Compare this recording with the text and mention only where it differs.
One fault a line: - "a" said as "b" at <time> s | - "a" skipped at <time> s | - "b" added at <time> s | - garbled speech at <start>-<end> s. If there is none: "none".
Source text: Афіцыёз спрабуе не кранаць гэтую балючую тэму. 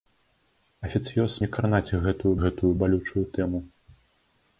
- "спрабуе" skipped at 1.4 s
- "гэтую" added at 2.4 s